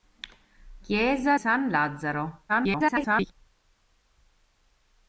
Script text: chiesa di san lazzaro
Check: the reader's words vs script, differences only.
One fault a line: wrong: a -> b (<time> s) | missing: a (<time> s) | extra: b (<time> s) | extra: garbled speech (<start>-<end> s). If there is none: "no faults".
missing: di (1.4 s)
extra: garbled speech (2.5-3.3 s)